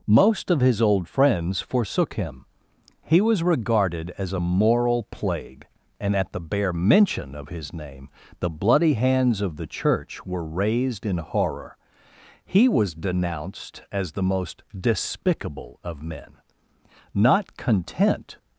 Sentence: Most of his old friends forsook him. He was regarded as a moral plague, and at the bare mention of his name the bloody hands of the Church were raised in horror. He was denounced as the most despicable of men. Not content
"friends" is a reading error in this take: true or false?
false